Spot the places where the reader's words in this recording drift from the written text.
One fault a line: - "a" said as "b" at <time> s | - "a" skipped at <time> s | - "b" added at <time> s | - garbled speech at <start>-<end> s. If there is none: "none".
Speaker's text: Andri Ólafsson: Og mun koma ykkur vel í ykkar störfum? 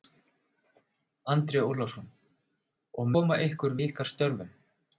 - "mun" skipped at 3.1 s
- "vel" skipped at 3.8 s